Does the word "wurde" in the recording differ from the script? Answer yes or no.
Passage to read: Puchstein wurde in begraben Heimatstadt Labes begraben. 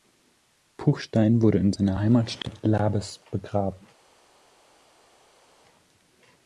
no